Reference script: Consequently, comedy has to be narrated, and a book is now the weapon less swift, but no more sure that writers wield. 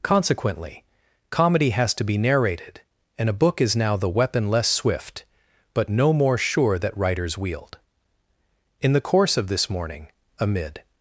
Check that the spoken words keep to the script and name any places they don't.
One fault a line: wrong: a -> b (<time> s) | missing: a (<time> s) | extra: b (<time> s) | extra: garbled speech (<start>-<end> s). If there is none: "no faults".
extra: In the course of this morning amid (8.8 s)